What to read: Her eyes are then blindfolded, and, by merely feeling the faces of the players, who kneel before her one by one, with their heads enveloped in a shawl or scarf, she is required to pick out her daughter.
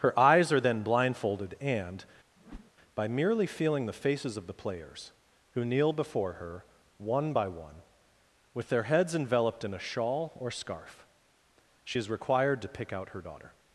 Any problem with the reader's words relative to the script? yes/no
no